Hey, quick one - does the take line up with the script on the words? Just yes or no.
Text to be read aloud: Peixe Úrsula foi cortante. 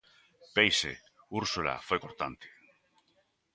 yes